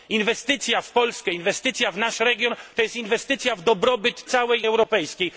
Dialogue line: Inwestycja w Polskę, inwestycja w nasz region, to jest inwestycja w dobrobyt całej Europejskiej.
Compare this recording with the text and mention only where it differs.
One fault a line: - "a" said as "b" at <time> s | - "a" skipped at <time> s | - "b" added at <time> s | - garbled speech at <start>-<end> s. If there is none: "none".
none